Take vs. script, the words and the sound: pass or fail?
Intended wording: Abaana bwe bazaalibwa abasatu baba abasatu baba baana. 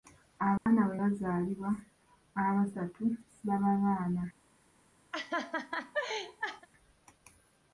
fail